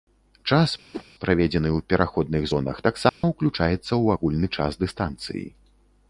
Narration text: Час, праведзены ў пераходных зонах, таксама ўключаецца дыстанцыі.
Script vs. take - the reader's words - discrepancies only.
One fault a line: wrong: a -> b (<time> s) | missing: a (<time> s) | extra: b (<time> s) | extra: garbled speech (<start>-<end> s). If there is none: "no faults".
extra: ў агульны час (3.9 s)